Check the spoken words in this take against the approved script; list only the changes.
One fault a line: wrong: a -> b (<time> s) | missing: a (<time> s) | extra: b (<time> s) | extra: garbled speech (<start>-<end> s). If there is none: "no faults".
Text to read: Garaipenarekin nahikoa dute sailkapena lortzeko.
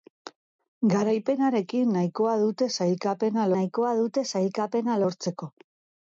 extra: nahikoa dute sailkapena (3.6 s)